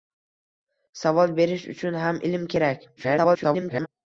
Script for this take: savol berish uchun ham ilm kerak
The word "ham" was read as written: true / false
true